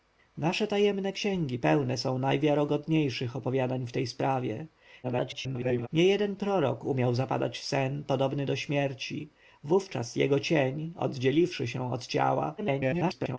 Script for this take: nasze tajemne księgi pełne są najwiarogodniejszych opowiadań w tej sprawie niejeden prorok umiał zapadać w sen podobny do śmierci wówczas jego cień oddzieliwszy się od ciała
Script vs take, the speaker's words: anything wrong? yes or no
yes